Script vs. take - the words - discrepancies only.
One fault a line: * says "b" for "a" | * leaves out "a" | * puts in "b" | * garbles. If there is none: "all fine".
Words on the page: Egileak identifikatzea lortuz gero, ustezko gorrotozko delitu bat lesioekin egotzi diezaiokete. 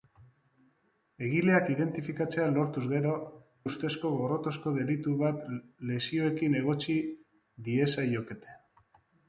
all fine